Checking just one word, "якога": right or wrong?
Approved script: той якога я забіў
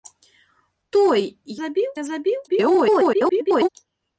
wrong